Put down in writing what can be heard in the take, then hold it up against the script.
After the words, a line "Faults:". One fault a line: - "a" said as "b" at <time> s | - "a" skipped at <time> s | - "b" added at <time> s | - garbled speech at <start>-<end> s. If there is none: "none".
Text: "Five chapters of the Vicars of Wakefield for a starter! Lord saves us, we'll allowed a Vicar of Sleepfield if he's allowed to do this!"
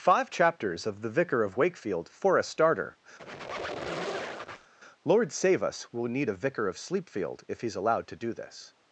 "Five chapters of the Vicar of Wakefield for a starter! Lord save us, we'll need a Vicar of Sleepfield if he's allowed to do this!"
Faults:
- "Vicars" said as "Vicar" at 1.1 s
- "saves" said as "save" at 5.3 s
- "allowed" said as "need" at 6.1 s